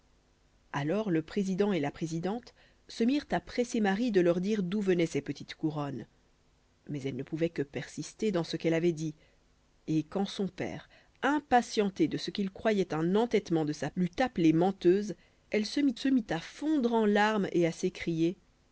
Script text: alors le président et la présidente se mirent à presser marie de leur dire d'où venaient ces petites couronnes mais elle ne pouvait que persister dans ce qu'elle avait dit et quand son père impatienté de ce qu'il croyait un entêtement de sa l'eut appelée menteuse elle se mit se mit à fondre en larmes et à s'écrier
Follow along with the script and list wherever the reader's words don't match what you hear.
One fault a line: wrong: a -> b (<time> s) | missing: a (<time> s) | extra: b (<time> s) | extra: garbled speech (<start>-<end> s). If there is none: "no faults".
no faults